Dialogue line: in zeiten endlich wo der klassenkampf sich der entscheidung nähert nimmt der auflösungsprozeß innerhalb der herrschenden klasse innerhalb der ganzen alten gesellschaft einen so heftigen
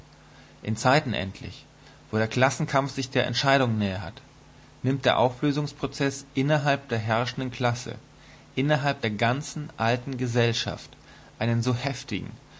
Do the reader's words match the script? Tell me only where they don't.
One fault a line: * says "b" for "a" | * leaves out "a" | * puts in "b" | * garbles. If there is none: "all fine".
all fine